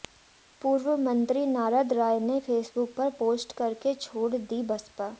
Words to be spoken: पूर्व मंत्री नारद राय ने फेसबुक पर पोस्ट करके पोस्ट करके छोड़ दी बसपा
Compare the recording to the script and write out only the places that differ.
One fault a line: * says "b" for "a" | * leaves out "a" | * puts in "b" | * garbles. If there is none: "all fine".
* leaves out "पोस्ट करके"